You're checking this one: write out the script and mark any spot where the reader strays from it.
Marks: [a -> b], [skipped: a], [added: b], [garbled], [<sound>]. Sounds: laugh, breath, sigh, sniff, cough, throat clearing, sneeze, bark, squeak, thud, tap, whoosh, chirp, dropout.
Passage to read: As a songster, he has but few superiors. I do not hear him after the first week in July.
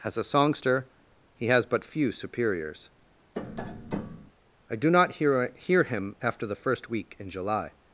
As a songster, he has but few superiors. [tap] I do not hear [added: hear] him after the first week in July.